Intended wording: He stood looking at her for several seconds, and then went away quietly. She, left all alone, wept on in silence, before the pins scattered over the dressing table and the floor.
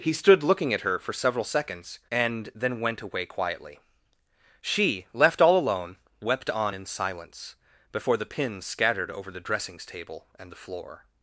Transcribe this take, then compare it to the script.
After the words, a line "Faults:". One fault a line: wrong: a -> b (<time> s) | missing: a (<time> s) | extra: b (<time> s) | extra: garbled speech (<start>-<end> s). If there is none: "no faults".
He stood looking at her for several seconds, and then went away quietly. She, left all alone, wept on in silence, before the pins scattered over the dressings table and the floor.
Faults:
wrong: dressing -> dressings (9.4 s)